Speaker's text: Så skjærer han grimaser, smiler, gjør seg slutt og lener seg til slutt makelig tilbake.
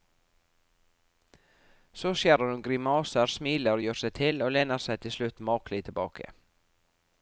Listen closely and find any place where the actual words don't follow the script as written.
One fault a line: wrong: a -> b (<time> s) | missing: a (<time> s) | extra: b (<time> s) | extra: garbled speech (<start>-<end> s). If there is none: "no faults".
wrong: han -> hun (2.5 s)
wrong: slutt -> til (4.2 s)